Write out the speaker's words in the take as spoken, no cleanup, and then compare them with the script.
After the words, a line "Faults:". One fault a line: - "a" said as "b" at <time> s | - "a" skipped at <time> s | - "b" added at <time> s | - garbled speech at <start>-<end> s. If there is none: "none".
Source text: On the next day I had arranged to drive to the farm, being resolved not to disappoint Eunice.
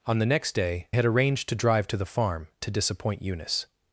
On the next day had arranged to drive to the farm, to disappoint Eunice.
Faults:
- "I" skipped at 0.9 s
- "being resolved not" skipped at 2.5 s